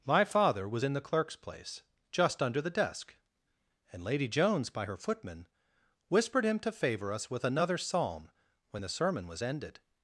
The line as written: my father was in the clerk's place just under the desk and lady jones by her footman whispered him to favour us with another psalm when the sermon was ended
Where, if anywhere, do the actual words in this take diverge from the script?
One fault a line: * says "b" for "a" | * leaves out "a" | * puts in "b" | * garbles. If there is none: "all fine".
all fine